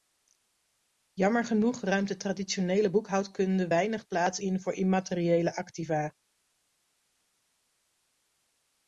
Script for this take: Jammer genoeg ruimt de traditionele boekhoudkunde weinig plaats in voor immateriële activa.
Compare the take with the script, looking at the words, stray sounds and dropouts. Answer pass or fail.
pass